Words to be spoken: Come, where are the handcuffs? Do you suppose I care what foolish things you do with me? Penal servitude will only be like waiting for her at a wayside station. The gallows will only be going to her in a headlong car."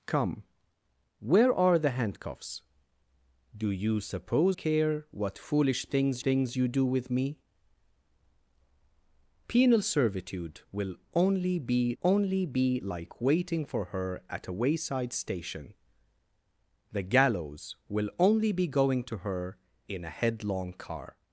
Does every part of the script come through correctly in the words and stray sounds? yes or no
no